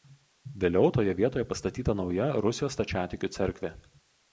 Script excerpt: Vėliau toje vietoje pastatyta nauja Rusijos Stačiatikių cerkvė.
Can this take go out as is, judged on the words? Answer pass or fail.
pass